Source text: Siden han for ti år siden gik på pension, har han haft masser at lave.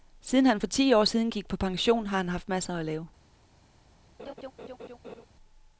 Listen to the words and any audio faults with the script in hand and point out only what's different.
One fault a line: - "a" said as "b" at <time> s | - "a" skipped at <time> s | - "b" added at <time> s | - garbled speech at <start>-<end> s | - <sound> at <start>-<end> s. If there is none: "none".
- laugh at 4.2-5.3 s